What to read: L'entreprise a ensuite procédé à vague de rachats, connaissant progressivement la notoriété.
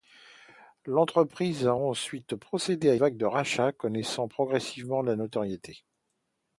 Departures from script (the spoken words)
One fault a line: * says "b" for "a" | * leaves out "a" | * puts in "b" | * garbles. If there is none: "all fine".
all fine